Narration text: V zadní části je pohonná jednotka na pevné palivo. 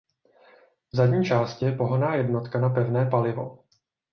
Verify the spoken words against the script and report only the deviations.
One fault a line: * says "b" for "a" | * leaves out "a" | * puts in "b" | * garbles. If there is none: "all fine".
all fine